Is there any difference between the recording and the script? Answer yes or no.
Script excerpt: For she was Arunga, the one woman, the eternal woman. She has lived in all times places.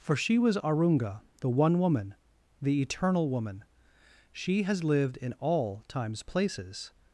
no